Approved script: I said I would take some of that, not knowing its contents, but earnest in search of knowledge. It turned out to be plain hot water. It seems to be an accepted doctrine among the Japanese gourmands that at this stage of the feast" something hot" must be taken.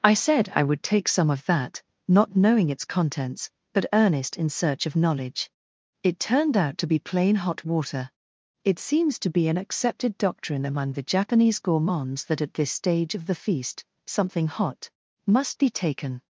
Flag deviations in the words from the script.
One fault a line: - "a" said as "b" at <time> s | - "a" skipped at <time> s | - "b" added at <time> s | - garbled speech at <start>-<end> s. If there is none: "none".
none